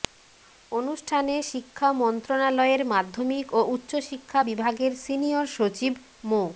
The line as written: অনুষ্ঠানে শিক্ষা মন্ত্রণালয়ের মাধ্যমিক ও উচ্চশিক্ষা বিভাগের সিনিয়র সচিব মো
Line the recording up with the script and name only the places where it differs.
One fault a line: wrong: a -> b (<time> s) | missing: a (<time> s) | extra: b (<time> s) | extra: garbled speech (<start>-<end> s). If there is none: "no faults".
no faults